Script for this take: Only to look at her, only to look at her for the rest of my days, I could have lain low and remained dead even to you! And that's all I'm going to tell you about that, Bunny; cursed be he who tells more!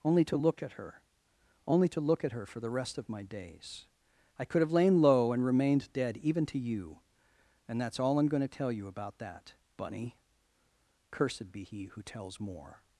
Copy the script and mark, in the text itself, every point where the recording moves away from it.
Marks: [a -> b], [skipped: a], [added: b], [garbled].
Only to look at her, only to look at her for the rest of my days, I could have lain low and remained dead even to you! And that's all I'm going to tell you about that, Bunny; cursed be he who tells more!